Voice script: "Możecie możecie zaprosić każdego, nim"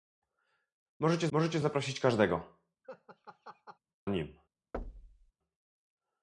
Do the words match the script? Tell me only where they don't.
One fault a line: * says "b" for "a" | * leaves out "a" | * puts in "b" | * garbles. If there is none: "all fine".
all fine